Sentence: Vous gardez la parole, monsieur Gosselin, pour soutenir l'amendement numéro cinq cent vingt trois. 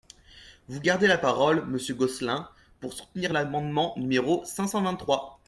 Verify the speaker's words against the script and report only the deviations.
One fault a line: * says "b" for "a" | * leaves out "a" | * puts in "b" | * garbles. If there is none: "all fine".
all fine